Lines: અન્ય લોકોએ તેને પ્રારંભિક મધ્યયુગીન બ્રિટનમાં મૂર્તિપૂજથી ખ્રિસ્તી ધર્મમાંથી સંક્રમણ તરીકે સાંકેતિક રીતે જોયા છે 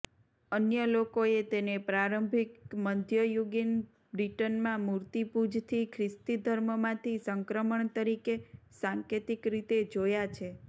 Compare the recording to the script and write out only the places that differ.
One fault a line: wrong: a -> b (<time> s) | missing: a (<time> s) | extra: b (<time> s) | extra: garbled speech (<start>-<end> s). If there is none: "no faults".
no faults